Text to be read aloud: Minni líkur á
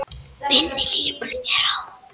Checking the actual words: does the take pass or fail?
pass